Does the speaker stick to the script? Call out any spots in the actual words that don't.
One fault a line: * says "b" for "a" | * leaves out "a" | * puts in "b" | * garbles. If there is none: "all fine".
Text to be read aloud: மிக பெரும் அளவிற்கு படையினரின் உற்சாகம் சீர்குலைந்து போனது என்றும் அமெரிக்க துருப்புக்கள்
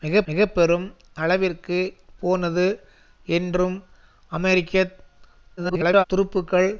* puts in "மிக"
* leaves out "படையினரின் உற்சாகம் சீர்குலைந்து"
* garbles